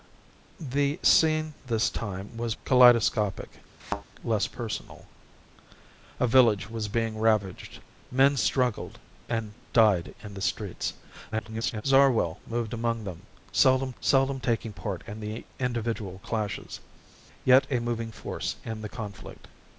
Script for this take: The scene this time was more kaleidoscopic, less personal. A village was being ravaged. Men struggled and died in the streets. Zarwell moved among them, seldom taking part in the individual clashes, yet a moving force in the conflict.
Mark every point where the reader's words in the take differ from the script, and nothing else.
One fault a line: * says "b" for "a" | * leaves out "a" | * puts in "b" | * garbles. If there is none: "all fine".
* leaves out "more"
* garbles
* puts in "seldom"